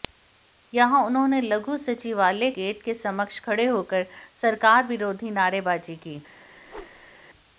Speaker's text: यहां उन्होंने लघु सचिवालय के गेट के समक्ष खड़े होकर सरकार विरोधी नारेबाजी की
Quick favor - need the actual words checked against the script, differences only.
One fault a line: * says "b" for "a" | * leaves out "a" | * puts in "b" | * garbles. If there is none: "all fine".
* leaves out "के"